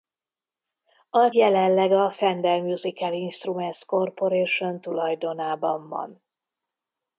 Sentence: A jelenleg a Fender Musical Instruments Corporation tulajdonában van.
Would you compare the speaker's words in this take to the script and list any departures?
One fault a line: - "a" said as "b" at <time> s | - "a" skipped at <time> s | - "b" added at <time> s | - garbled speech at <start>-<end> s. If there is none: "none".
none